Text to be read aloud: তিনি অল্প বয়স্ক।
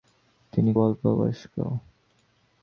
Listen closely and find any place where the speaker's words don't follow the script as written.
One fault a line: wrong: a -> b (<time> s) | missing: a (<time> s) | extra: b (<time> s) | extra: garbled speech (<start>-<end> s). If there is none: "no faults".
no faults